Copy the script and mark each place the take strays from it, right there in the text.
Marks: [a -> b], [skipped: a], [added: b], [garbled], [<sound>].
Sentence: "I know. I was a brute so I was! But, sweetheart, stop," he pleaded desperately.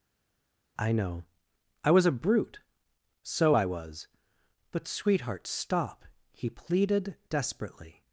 "I know. I was a brute so I was! But, sweetheart, stop," he pleaded desperately.